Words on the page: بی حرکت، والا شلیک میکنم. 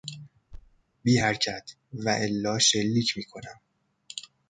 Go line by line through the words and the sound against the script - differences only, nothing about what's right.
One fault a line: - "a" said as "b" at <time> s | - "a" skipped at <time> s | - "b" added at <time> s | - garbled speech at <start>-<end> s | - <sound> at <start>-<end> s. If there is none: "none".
- thud at 0.5-0.8 s